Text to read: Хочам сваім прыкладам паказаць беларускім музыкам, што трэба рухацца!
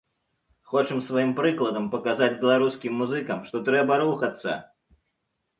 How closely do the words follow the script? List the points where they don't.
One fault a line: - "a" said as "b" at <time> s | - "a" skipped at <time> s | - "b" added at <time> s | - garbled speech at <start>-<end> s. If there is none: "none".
none